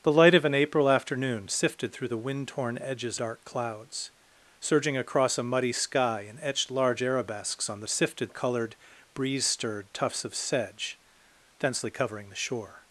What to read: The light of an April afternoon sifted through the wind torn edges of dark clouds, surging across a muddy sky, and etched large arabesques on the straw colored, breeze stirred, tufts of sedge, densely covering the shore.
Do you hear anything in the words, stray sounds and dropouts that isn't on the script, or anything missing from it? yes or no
yes